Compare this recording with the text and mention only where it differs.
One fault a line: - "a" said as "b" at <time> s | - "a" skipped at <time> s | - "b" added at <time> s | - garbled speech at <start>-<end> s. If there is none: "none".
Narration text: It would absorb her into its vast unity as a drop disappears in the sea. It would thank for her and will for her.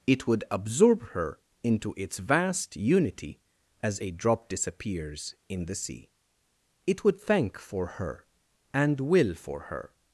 none